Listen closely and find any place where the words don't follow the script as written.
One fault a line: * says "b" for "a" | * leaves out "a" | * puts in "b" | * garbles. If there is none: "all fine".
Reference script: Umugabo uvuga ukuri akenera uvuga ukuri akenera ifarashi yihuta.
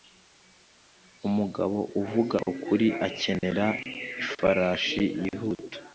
* leaves out "uvuga ukuri akenera"